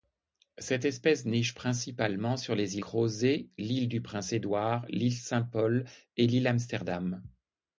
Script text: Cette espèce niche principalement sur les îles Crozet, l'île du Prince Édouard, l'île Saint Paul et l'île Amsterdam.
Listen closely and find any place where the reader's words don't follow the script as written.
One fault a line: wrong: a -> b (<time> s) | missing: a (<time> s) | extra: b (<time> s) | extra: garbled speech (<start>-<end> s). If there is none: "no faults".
missing: îles (2.8 s)